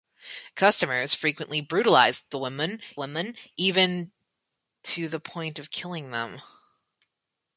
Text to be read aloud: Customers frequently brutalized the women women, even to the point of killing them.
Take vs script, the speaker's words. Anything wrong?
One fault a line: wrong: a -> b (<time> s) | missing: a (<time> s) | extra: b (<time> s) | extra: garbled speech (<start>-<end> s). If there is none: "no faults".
no faults